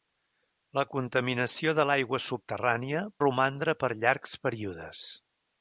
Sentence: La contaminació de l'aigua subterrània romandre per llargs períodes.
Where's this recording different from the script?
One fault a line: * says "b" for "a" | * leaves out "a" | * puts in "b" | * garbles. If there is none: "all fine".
all fine